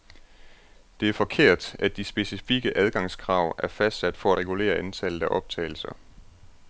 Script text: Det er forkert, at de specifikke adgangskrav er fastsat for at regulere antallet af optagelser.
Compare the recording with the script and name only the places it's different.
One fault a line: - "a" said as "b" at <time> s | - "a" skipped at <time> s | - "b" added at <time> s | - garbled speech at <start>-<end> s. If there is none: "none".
- "at" skipped at 4.3 s